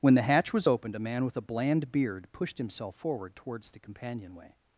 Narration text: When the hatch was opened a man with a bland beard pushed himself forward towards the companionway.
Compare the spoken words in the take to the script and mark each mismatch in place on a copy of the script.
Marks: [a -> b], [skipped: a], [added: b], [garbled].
When the hatch was opened a man with a bland beard pushed himself forward towards the companionway.